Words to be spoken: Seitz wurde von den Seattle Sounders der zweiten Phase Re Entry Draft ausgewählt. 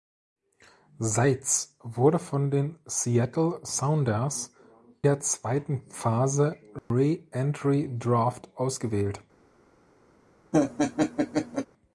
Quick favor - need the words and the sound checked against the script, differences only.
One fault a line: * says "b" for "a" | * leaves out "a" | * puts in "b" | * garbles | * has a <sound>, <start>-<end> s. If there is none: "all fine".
* has a dropout, 6.8-6.9 s
* has a laugh, 10.5-11.7 s